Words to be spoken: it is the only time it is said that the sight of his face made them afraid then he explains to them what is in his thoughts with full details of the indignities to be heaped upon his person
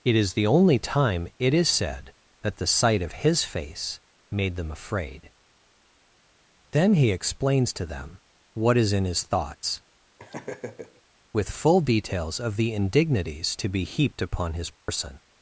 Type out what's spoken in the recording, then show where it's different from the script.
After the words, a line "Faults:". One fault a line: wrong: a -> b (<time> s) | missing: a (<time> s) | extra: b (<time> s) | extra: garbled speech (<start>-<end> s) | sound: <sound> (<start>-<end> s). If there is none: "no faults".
it is the only time it is said that the sight of his face made them afraid then he explains to them what is in his thoughts with full details of the indignities to be heaped upon his person
Faults:
sound: laugh (10.2-11.0 s)
sound: dropout (14.7-14.9 s)